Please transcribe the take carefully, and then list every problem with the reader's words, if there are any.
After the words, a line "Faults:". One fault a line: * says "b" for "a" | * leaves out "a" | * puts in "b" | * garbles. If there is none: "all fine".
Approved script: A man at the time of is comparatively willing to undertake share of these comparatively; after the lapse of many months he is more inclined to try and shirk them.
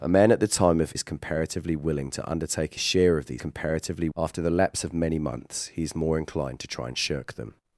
A man at the time of is comparatively willing to undertake share of these comparatively; after the lapse of many months he is more inclined to try and shirk them.
Faults:
all fine